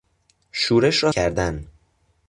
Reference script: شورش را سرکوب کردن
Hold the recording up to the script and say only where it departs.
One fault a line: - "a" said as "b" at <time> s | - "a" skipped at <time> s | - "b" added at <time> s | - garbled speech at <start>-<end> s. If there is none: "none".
- "سرکوب" skipped at 1.1 s